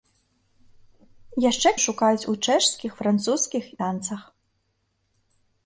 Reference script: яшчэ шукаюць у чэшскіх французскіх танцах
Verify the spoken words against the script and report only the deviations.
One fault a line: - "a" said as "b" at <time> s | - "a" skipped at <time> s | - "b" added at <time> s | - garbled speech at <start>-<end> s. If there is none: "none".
none